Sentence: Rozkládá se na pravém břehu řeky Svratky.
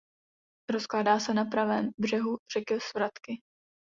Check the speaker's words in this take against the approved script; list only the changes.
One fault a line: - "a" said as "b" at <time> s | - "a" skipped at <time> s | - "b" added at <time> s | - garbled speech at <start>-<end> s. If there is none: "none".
none